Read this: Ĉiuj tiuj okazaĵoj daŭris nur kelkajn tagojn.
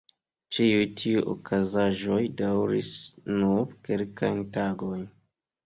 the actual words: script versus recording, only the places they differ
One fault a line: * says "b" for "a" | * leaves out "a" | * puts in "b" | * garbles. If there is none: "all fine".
all fine